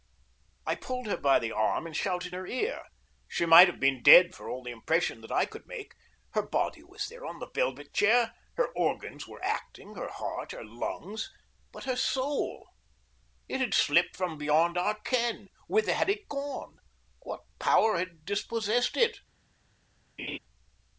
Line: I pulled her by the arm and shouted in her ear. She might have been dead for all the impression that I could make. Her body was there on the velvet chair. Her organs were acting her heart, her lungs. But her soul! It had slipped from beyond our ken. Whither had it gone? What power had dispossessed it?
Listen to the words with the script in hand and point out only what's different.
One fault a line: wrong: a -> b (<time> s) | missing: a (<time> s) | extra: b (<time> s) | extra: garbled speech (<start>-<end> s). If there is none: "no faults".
missing: in (2.4 s)